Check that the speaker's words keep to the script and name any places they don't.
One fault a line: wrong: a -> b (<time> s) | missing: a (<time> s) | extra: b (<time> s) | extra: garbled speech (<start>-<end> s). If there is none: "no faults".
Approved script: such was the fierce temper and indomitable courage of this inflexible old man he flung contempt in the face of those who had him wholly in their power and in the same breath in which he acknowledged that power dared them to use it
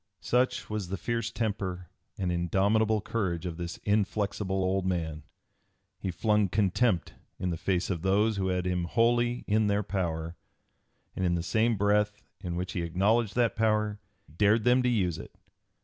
no faults